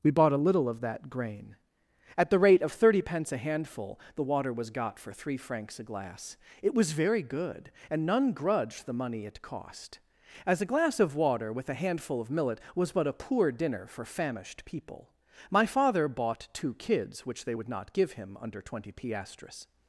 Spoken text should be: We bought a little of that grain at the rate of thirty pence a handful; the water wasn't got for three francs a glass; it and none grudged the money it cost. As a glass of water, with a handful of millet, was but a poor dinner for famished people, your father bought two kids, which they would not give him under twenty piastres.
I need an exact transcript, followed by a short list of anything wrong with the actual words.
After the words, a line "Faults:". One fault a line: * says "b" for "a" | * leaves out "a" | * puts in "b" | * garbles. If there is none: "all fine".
We bought a little of that grain at the rate of thirty pence a handful; the water was got for three francs a glass; it was very good, and none grudged the money it cost. As a glass of water, with a handful of millet, was but a poor dinner for famished people, my father bought two kids, which they would not give him under twenty piastres.
Faults:
* says "was" for "wasn't"
* puts in "was very good"
* says "my" for "your"